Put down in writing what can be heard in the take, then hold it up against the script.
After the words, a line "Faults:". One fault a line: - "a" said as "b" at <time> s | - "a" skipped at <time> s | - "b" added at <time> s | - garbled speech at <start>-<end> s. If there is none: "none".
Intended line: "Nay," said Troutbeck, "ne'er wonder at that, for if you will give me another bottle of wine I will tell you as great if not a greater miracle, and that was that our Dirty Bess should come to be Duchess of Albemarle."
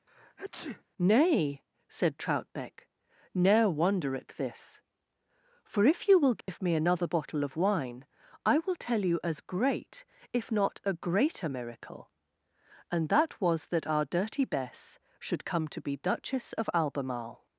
"Nay," said Troutbeck, "ne'er wonder at this, for if you will give me another bottle of wine I will tell you as great if not a greater miracle, and that was that our Dirty Bess should come to be Duchess of Albemarle."
Faults:
- "that" said as "this" at 4.3 s